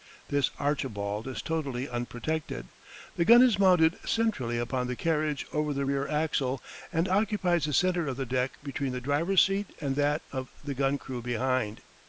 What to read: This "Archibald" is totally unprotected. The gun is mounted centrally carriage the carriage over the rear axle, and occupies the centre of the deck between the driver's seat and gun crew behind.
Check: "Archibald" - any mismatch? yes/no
no